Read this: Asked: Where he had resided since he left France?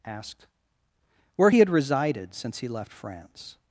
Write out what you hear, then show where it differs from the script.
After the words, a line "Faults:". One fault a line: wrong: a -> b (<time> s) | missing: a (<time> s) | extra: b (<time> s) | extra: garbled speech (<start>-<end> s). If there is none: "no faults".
Asked: Where he had resided since he left France?
Faults:
no faults